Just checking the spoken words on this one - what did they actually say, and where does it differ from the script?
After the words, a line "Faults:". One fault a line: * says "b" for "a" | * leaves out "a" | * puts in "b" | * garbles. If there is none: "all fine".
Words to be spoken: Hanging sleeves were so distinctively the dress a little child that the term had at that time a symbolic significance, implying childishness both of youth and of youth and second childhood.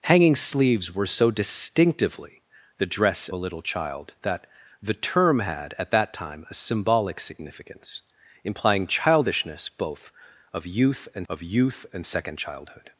Hanging sleeves were so distinctively the dress a little child that the term had at that time a symbolic significance, implying childishness both of youth and of youth and second childhood.
Faults:
all fine